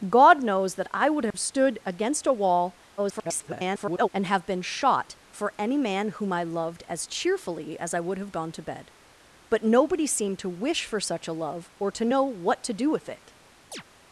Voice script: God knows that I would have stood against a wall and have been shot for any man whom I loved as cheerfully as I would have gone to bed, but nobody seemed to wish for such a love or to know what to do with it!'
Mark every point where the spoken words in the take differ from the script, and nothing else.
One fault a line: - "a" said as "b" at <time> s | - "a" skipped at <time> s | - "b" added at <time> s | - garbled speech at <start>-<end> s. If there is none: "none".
- garbled speech at 3.0-4.1 s